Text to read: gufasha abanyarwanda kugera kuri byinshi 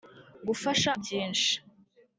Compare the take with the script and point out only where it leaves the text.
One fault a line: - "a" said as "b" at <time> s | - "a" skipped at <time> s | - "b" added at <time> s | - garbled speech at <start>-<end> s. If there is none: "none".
- "abanyarwanda kugera kuri" skipped at 0.9 s